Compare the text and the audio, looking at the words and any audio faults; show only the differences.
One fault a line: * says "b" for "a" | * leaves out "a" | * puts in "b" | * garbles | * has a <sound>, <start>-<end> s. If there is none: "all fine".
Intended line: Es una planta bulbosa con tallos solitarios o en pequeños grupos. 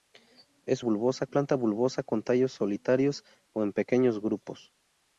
* says "bulbosa" for "una"